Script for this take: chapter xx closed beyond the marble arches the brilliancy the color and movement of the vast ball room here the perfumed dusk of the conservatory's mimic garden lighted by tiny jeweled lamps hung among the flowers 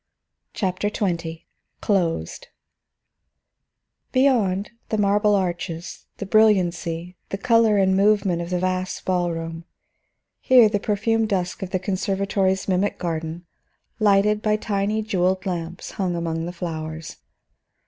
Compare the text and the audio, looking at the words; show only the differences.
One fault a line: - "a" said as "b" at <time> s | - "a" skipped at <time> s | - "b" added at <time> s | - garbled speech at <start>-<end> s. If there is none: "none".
none